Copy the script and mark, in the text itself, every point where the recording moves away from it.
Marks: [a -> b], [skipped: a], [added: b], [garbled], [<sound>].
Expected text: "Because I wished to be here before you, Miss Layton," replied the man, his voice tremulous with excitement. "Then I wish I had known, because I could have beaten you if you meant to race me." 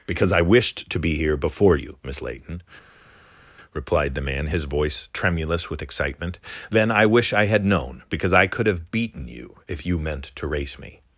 "Because I wished to be here before you, Miss Layton," replied the man, his voice tremulous with excitement. "Then I wish I had known, because I could have beaten you if you meant to race me."